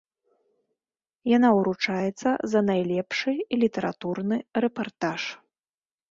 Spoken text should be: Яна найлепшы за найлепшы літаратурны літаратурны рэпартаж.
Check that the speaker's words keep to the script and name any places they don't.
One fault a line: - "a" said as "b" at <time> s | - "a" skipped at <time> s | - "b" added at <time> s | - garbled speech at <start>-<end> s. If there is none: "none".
- "найлепшы" said as "ўручаецца" at 1.6 s
- "літаратурны" skipped at 4.4 s